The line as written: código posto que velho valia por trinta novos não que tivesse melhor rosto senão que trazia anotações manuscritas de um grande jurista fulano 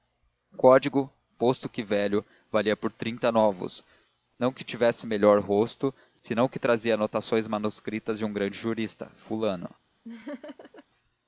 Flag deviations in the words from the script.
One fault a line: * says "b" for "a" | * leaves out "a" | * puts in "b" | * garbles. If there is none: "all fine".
all fine